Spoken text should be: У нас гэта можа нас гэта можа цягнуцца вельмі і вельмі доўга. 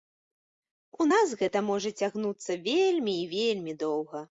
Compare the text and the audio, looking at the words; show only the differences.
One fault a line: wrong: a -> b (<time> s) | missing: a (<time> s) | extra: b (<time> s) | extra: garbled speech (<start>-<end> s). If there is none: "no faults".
missing: нас гэта можа (1.9 s)